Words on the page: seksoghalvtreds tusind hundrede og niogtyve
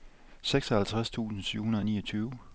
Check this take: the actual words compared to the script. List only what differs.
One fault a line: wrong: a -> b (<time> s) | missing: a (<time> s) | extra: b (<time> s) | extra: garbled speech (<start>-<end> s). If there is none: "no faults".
extra: syv (1.4 s)